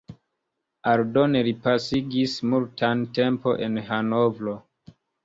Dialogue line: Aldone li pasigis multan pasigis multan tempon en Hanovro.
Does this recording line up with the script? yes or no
no